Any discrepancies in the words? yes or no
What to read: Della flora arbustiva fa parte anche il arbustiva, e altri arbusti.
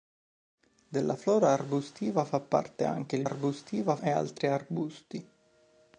no